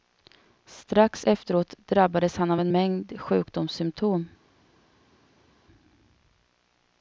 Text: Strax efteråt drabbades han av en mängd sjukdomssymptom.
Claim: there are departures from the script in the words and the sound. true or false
false